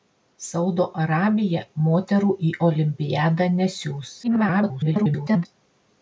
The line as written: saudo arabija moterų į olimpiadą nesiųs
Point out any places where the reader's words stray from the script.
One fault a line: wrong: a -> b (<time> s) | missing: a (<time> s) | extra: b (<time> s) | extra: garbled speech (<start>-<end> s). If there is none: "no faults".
extra: garbled speech (4.2-5.5 s)